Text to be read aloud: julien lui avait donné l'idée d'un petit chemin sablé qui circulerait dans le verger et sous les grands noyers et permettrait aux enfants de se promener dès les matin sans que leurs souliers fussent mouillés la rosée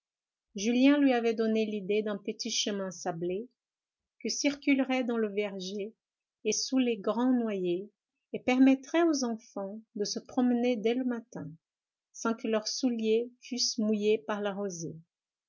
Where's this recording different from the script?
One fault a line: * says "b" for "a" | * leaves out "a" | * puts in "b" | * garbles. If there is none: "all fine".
* says "le" for "les"
* puts in "par"